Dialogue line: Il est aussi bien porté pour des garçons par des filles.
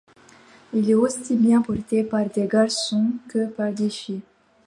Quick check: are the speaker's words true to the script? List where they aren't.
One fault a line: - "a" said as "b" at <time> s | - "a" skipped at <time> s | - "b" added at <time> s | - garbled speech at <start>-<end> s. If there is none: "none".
- "pour" said as "par" at 2.0 s
- "que" added at 3.3 s